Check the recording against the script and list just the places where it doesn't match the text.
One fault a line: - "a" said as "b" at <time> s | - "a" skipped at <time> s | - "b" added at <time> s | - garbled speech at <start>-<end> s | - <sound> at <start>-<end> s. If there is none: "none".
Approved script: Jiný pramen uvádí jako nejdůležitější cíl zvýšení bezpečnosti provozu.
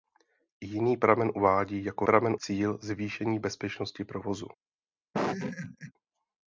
- "nejdůležitější" said as "pramen" at 2.0 s
- laugh at 5.1-5.9 s